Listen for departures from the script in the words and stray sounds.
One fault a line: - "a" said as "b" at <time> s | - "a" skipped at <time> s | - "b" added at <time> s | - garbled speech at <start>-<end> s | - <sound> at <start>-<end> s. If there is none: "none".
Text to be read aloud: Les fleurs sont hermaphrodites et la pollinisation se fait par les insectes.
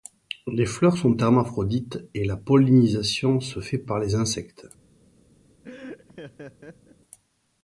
- laugh at 5.6-7.0 s